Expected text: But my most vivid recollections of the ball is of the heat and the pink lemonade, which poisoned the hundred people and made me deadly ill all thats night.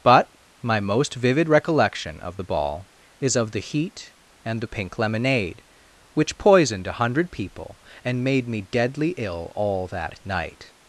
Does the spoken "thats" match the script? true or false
false